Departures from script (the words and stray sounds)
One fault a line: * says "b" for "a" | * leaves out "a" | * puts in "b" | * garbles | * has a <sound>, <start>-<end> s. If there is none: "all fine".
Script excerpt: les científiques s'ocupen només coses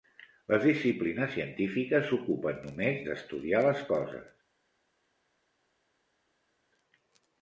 * puts in "disciplines"
* puts in "d'estudiar les"